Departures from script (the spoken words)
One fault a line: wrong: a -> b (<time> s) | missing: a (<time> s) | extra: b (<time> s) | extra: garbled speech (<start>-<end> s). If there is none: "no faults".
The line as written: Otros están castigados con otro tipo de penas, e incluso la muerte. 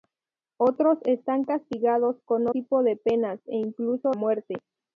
missing: otro (2.5 s)
missing: la (4.1 s)